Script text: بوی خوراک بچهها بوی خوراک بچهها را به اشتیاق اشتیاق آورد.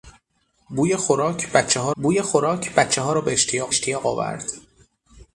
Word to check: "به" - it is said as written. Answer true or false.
true